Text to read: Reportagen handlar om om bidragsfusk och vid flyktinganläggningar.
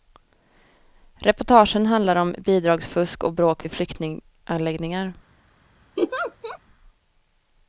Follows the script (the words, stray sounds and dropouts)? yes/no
no